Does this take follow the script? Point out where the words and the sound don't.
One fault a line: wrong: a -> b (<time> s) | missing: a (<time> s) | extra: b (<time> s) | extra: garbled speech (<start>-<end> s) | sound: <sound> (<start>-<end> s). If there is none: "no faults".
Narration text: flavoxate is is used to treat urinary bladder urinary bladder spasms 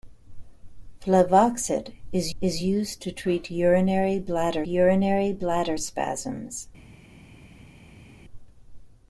no faults